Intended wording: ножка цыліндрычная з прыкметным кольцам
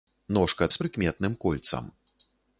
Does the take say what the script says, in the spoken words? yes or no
no